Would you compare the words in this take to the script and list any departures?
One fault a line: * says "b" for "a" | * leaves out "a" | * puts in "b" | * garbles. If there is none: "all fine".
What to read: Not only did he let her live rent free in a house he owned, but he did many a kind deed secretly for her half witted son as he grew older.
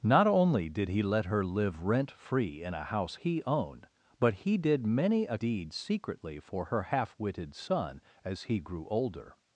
* leaves out "kind"